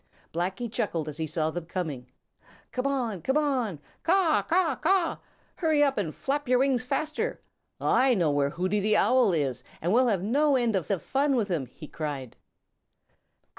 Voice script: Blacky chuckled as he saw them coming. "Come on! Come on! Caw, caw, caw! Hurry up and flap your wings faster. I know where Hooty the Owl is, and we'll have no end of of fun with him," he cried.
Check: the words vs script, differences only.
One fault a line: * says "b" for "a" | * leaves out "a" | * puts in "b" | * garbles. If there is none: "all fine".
all fine